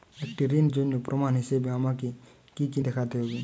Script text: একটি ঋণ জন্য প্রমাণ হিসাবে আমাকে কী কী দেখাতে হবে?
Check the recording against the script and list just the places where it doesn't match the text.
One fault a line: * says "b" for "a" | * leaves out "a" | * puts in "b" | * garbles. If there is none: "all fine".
all fine